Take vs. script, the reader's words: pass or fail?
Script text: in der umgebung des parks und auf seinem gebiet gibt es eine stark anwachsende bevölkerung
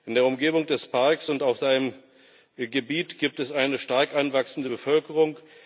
pass